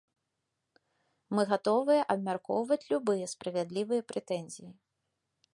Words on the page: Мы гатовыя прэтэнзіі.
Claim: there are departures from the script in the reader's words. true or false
true